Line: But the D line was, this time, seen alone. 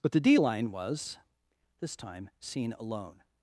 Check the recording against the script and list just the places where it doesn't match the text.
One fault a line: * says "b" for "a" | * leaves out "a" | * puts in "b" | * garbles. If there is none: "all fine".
all fine